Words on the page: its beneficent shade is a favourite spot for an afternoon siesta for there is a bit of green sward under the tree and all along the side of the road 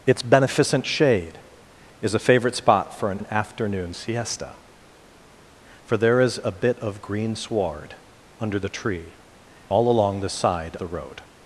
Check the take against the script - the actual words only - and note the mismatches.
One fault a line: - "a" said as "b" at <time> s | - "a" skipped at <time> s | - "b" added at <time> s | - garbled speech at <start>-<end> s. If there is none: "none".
- "an" added at 3.2 s
- "and" skipped at 9.1 s
- "of" skipped at 10.8 s